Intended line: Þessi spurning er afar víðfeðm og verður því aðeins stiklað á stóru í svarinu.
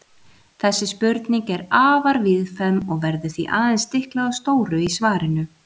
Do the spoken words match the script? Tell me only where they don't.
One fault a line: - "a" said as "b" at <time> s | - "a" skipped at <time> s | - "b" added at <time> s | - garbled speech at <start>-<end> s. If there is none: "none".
none